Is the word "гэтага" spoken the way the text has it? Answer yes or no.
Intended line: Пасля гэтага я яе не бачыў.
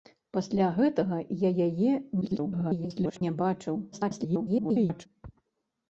yes